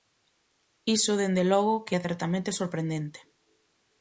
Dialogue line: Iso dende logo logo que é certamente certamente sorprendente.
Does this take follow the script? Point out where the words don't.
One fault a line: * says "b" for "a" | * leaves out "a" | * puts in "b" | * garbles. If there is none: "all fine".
* leaves out "logo"
* leaves out "certamente"